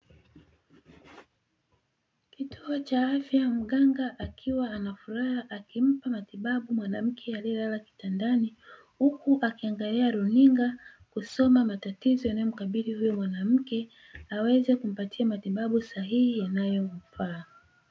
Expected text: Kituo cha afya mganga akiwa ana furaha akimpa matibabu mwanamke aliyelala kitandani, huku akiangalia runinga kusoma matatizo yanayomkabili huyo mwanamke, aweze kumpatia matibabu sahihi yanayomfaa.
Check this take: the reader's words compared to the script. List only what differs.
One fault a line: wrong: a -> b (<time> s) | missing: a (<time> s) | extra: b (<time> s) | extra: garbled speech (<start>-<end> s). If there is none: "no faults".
no faults